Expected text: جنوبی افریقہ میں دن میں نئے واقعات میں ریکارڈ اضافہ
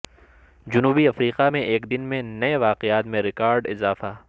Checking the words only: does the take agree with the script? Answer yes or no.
no